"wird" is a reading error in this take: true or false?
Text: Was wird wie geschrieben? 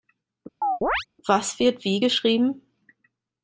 false